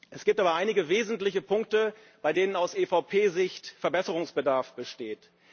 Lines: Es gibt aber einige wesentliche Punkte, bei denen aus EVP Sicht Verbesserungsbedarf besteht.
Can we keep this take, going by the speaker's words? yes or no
yes